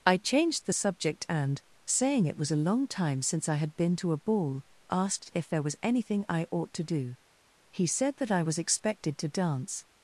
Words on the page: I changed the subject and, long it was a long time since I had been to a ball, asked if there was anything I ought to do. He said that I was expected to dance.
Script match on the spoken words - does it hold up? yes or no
no